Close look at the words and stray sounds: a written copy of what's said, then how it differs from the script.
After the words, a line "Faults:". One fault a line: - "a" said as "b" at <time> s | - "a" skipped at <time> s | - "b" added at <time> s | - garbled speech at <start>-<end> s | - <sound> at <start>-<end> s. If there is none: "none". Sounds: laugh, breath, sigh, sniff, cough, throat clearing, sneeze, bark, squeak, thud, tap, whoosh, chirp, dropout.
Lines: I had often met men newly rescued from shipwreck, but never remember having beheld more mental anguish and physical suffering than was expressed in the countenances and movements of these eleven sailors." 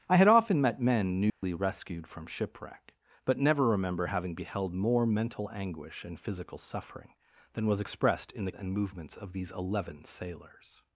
I had often met men newly rescued from shipwreck, but never remember having beheld more mental anguish and physical suffering than was expressed in the and movements of these eleven sailors."
Faults:
- dropout at 1.3-1.4 s
- "countenances" skipped at 8.5 s